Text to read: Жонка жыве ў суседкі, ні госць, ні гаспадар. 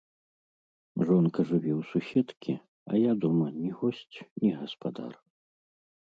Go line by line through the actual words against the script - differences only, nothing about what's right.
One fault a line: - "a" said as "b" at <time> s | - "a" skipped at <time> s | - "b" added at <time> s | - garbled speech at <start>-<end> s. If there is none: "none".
- "а я дома" added at 2.9 s